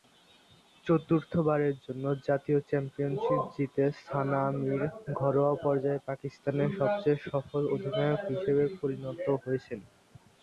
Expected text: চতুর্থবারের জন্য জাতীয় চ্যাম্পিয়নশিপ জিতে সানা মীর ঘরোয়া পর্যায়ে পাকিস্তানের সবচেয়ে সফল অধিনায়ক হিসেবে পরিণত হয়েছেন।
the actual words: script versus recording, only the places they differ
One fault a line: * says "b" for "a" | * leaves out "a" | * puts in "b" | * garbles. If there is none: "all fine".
all fine